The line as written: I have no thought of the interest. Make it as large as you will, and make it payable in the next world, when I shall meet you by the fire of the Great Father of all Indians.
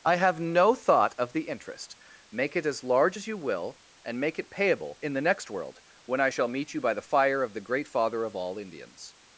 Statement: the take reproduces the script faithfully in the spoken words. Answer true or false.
true